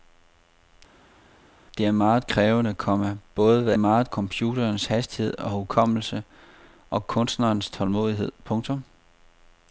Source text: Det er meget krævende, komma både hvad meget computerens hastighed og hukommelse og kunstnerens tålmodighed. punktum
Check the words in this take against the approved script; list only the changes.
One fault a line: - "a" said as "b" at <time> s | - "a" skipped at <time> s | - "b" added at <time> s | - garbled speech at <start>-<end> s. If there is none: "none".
none